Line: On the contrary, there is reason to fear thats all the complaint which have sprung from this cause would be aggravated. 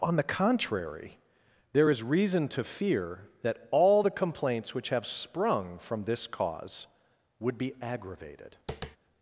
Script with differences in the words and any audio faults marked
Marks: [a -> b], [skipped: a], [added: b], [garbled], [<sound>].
On the contrary, there is reason to fear [thats -> that] all the [complaint -> complaints] which have sprung from this cause would be aggravated. [tap]